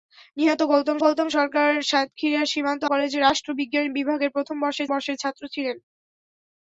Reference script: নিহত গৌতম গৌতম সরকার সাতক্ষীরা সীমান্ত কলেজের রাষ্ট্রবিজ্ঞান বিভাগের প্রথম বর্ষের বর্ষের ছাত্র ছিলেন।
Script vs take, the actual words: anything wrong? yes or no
no